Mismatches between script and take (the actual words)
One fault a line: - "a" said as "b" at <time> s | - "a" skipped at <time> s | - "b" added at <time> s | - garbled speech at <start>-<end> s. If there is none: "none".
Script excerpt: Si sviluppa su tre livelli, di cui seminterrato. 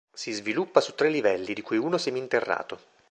- "uno" added at 1.8 s